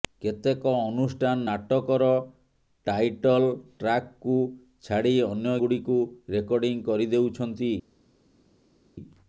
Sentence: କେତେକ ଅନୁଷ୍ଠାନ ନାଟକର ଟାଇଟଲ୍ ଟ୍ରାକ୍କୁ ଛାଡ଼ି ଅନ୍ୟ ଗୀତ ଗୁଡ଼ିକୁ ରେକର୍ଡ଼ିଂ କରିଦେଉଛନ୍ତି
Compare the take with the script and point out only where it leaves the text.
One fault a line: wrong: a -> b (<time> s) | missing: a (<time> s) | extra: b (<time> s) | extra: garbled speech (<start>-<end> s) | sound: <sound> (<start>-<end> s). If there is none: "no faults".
missing: ଗୀତ (5.6 s)